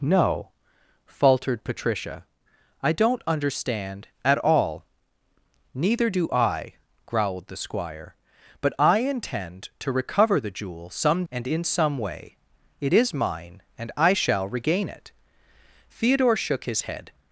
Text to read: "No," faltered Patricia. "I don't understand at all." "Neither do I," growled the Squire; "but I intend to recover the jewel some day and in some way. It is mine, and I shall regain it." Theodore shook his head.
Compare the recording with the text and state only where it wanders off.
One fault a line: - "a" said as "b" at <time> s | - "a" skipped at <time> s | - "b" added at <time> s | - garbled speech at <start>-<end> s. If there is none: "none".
- "day" skipped at 11.2 s